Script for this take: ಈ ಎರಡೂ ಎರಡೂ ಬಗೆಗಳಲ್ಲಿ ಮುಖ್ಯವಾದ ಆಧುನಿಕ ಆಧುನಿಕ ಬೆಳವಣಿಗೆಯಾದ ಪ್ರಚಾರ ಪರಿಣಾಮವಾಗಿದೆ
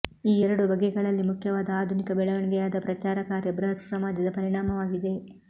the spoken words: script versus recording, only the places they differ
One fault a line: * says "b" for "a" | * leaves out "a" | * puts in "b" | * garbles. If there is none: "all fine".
* leaves out "ಎರಡೂ"
* leaves out "ಆಧುನಿಕ"
* puts in "ಕಾರ್ಯ ಬೃಹತ್ ಸಮಾಜದ"